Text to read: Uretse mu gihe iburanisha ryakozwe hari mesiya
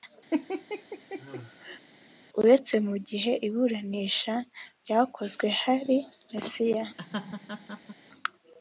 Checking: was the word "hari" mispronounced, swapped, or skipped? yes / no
no